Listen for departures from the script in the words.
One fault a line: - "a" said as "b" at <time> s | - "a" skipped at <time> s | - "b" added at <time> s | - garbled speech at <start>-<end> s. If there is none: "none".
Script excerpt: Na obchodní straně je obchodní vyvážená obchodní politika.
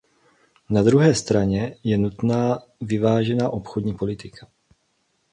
- "obchodní" said as "druhé" at 0.8 s
- "obchodní" said as "nutná" at 2.0 s